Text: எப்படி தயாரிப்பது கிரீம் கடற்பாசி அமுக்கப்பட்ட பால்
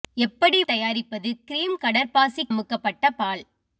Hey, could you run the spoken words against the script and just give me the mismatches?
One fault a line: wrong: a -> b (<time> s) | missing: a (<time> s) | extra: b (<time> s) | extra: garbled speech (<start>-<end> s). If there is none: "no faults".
no faults